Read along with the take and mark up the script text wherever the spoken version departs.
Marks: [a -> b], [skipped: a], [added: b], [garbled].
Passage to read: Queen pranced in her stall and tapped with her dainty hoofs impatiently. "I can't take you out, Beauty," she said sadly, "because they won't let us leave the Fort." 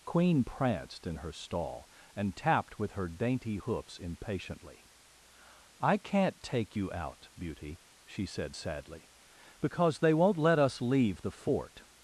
Queen pranced in her stall and tapped with her dainty hoofs impatiently. "I can't take you out, Beauty," she said sadly, "because they won't let us leave the Fort."